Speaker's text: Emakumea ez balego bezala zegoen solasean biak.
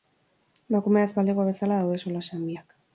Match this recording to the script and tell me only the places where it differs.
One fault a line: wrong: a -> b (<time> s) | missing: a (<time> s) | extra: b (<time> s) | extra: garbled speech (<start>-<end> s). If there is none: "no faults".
wrong: zegoen -> daude (1.9 s)